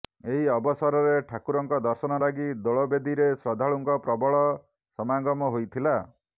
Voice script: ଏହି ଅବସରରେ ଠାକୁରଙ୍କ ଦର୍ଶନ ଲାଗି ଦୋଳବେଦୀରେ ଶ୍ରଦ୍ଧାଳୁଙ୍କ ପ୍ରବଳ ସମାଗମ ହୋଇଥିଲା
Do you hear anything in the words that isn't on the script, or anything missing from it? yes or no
no